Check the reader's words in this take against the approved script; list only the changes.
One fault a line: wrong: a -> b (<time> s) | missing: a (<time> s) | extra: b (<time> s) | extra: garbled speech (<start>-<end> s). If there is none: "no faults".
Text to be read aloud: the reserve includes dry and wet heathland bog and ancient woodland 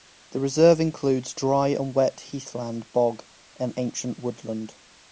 no faults